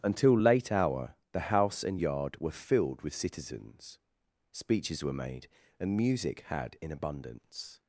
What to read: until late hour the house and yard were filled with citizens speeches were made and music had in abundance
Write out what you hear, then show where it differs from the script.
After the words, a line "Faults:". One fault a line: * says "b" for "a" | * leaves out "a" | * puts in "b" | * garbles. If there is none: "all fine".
until late hour the house and yard were filled with citizens speeches were made and music had in abundance
Faults:
all fine